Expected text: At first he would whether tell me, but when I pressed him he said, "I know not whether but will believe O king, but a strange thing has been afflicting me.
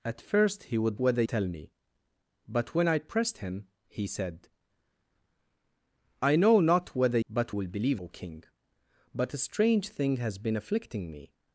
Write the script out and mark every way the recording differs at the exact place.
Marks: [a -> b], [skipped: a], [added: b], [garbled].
At first he would whether tell me, but when I pressed him he said, "I know not whether but will believe O king, but a strange thing has been afflicting me.